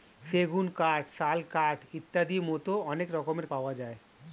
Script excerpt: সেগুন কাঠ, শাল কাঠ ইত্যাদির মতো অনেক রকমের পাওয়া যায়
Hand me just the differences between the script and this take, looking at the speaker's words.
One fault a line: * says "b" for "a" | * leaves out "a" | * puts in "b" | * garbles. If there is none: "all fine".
all fine